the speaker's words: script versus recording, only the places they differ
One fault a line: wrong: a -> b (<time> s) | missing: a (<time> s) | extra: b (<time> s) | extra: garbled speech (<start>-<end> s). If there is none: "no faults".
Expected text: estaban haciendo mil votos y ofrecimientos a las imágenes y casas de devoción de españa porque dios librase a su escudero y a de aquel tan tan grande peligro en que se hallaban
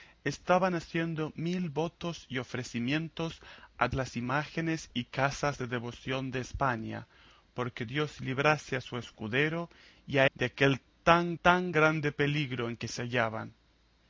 no faults